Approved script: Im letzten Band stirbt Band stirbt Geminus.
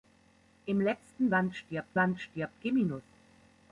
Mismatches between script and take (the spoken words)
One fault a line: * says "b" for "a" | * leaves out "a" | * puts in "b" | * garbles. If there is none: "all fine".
all fine